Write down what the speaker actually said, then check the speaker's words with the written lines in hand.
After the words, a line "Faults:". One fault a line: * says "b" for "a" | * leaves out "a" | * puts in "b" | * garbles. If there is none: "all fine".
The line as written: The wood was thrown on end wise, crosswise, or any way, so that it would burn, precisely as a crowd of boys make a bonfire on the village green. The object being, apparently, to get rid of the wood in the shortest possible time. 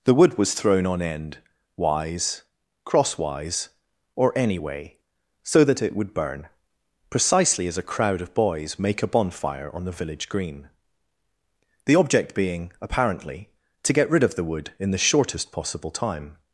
The wood was thrown on end wise, crosswise, or any way, so that it would burn, precisely as a crowd of boys make a bonfire on the village green. The object being, apparently, to get rid of the wood in the shortest possible time.
Faults:
all fine